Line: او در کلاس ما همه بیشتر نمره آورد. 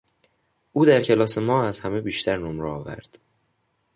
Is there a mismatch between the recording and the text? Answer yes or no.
yes